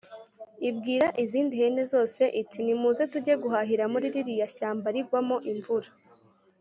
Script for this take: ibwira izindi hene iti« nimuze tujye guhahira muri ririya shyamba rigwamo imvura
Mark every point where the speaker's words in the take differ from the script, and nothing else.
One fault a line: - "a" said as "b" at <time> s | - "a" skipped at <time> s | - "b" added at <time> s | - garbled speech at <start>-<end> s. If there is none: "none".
- "zose" added at 1.9 s